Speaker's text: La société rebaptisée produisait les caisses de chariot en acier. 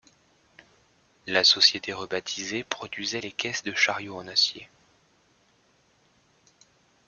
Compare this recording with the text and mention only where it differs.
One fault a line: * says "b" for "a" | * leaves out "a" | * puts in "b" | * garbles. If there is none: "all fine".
all fine